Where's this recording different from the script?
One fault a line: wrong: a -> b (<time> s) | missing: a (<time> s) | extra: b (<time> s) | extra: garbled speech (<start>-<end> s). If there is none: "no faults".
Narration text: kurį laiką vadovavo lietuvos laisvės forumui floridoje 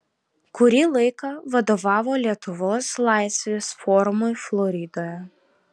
no faults